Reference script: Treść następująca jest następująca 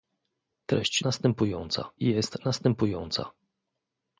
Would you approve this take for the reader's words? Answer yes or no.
yes